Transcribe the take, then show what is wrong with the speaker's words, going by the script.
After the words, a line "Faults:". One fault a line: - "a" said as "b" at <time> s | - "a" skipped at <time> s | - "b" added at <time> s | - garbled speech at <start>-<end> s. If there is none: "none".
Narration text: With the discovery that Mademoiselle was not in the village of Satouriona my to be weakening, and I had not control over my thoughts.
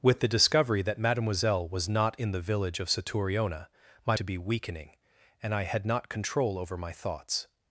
With the discovery that Mademoiselle was not in the village of Satouriona my to be weakening, and I had not control over my thoughts.
Faults:
none